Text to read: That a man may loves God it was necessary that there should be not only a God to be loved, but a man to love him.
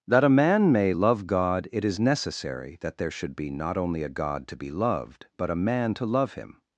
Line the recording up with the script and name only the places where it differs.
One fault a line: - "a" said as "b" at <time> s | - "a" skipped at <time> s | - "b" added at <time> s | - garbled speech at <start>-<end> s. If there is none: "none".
- "loves" said as "love" at 0.9 s
- "was" said as "is" at 1.8 s